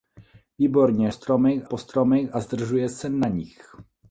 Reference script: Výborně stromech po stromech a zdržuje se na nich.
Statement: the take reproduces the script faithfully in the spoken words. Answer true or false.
true